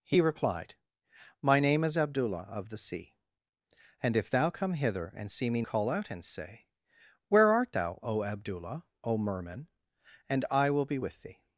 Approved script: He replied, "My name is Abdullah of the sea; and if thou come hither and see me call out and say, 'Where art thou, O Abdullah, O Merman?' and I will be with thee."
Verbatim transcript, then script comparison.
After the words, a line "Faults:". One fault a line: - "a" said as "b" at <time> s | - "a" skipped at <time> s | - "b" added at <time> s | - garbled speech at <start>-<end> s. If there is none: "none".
He replied, "My name is Abdullah of the sea; and if thou come hither and see me call out and say, 'Where art thou, O Abdullah, O Merman?' and I will be with thee."
Faults:
none